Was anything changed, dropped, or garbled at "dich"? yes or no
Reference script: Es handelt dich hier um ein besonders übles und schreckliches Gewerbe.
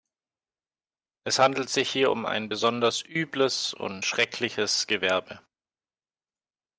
yes